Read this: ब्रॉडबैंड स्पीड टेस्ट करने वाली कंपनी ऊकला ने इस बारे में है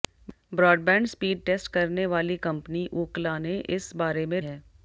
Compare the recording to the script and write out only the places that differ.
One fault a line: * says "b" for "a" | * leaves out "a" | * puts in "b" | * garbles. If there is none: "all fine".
all fine